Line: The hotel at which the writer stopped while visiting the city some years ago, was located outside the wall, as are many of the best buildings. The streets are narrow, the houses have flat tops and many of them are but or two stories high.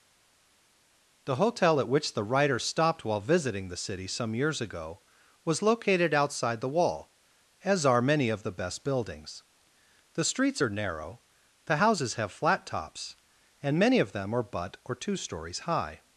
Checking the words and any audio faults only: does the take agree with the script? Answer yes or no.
yes